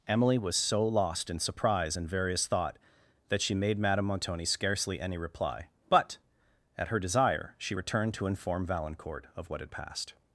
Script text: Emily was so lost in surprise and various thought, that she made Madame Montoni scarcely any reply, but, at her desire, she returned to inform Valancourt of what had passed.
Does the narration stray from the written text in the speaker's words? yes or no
no